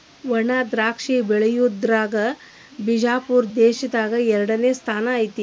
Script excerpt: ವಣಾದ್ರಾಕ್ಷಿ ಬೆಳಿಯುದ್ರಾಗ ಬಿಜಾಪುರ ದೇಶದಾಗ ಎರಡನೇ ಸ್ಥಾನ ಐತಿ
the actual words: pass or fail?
pass